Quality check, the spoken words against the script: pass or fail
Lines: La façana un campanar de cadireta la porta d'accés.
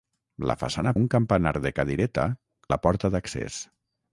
pass